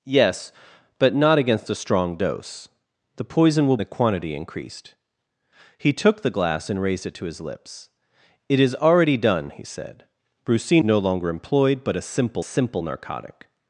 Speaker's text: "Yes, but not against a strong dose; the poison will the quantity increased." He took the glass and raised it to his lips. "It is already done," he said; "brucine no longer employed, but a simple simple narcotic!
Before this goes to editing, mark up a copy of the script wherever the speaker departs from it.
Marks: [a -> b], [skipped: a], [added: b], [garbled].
"Yes, but not against a strong dose; the poison will the quantity increased." He took the glass and raised it to his lips. "It is already done," he said; "brucine no longer employed, but a simple simple narcotic!